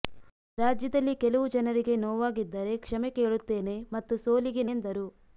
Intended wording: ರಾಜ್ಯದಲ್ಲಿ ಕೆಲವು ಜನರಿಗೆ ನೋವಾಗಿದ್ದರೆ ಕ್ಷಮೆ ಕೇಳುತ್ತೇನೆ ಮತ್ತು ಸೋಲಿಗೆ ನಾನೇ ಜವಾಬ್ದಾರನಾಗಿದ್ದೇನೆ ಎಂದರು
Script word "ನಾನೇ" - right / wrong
wrong